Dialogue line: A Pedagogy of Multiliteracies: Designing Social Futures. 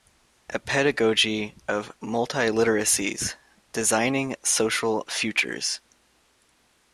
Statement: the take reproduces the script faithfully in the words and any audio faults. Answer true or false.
true